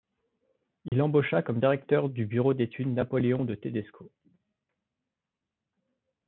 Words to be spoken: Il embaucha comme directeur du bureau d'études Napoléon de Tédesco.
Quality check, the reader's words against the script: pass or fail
pass